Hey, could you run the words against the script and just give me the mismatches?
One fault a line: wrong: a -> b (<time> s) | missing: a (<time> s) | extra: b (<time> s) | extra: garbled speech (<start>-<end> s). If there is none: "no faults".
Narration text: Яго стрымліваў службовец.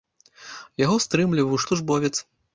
no faults